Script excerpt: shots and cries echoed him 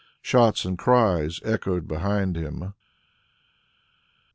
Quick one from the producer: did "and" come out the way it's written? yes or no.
yes